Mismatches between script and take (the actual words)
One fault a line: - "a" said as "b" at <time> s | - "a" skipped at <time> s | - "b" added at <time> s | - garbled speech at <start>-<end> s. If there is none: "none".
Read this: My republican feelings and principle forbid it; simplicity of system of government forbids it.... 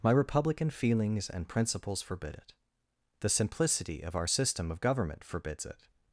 - "principle" said as "principles" at 1.5 s
- "the" added at 3.2 s
- "our" added at 4.2 s